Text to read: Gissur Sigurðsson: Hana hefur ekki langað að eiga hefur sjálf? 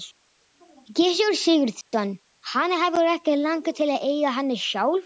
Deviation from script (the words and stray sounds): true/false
true